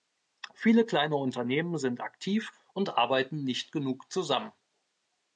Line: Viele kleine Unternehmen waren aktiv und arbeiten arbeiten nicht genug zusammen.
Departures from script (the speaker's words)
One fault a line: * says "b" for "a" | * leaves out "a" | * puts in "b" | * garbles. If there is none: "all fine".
* says "sind" for "waren"
* leaves out "arbeiten"